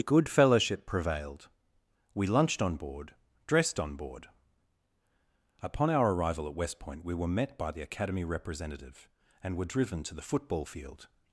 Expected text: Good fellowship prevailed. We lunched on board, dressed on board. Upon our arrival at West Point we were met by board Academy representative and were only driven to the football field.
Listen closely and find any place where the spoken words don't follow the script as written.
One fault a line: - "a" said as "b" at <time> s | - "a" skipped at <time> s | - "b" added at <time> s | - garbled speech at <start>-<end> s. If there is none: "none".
- "board" said as "the" at 7.7 s
- "only" skipped at 9.7 s